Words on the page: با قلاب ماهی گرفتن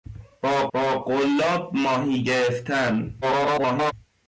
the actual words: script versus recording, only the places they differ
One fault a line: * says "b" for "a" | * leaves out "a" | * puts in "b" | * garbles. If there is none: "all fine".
* puts in "با"
* garbles